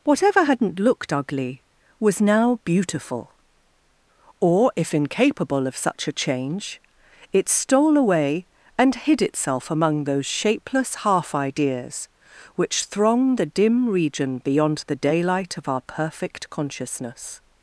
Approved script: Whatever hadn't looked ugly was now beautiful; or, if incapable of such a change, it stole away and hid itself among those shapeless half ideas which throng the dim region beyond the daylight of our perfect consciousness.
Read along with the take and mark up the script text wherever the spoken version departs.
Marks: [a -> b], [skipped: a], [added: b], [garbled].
Whatever hadn't looked ugly was now beautiful; or, if incapable of such a change, it stole away and hid itself among those shapeless half ideas which throng the dim region beyond the daylight of our perfect consciousness.